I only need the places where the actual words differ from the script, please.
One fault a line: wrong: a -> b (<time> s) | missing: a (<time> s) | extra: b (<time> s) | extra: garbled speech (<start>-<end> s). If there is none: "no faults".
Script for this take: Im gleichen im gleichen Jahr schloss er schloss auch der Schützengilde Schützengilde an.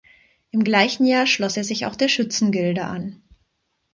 missing: im gleichen (1.1 s)
wrong: schloss -> sich (1.6 s)
missing: Schützengilde (2.8 s)